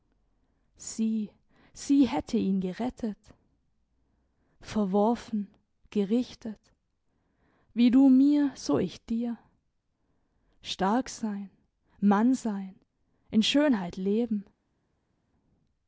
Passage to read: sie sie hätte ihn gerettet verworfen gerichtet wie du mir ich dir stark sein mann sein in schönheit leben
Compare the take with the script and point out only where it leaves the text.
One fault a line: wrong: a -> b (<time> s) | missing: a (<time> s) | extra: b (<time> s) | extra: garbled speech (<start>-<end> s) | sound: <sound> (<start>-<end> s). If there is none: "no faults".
extra: so (8.5 s)